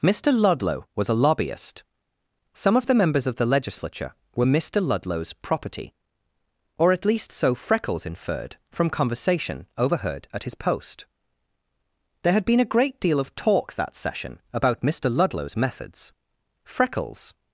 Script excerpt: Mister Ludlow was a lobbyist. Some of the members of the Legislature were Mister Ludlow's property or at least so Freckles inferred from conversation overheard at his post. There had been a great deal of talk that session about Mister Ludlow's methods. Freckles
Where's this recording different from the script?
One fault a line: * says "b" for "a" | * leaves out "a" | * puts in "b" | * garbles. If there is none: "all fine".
all fine